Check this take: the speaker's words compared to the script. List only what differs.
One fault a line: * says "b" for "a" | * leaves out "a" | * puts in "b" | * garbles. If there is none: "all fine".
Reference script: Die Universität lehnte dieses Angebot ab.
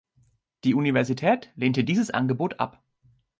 all fine